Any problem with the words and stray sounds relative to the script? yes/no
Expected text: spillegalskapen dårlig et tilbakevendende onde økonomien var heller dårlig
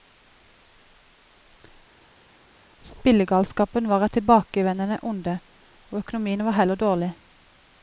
yes